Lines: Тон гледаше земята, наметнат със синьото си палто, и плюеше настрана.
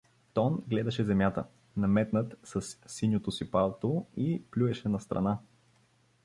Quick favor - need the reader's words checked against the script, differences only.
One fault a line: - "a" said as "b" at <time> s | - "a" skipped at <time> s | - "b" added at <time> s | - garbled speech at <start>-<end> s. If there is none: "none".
none